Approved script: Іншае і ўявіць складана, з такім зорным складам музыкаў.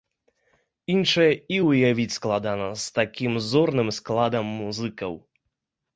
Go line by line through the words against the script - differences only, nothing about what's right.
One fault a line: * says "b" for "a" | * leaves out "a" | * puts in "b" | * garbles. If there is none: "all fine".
all fine